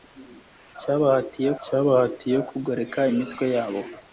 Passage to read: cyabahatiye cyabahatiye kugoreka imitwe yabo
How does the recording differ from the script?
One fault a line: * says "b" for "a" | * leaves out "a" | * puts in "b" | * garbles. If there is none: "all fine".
all fine